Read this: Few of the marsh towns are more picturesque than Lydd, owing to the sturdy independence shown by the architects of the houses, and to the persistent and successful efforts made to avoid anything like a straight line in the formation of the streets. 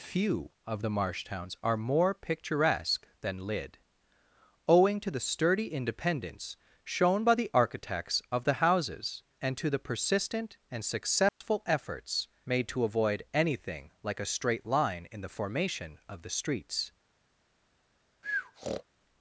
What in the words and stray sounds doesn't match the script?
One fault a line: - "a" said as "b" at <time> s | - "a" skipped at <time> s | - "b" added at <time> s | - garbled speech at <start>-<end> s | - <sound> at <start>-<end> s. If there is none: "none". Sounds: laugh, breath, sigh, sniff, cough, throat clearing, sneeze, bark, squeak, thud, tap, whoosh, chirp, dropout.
- dropout at 11.3-11.4 s
- breath at 18.2-18.8 s